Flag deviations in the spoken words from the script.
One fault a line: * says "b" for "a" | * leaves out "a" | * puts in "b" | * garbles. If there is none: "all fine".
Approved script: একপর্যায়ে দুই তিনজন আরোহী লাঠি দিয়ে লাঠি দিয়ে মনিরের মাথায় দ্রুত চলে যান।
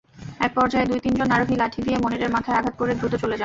* says "মনিরের মাথায় আঘাত করে" for "লাঠি দিয়ে মনিরের মাথায়"